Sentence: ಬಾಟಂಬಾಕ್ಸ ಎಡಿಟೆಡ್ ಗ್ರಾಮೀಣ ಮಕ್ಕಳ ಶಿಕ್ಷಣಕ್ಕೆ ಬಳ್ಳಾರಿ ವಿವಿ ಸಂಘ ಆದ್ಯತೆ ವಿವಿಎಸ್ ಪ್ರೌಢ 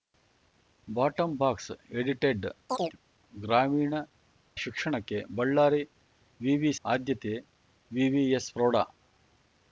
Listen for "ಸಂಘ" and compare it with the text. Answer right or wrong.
wrong